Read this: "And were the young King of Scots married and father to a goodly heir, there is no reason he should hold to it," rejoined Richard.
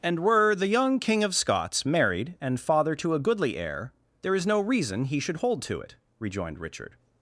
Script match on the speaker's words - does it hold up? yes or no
yes